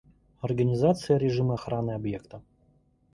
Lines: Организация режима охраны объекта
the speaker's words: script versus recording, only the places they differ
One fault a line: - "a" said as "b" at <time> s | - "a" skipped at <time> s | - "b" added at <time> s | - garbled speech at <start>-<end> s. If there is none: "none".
none